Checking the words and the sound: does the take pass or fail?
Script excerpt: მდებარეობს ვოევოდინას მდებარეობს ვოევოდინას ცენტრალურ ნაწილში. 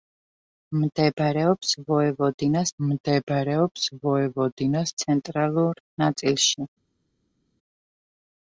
pass